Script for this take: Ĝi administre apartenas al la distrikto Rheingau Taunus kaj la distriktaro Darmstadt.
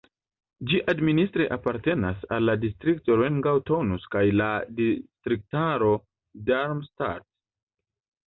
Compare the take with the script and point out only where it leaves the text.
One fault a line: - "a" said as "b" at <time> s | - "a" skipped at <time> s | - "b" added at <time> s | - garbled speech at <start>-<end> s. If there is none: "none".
none